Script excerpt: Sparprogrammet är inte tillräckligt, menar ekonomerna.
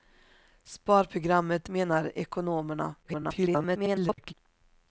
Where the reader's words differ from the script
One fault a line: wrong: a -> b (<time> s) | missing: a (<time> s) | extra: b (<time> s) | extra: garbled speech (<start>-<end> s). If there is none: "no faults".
missing: är inte tillräckligt (1.7 s)
extra: garbled speech (3.0-4.3 s)